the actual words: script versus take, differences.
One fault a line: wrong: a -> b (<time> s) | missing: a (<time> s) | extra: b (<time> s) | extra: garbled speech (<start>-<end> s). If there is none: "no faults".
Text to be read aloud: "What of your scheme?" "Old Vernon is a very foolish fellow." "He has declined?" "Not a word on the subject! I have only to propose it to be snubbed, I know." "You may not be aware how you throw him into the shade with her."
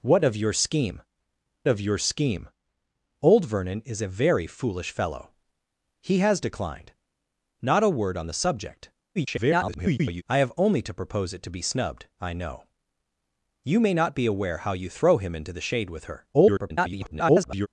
extra: of your scheme (1.7 s)
extra: garbled speech (9.2-10.2 s)
extra: garbled speech (16.3-17.7 s)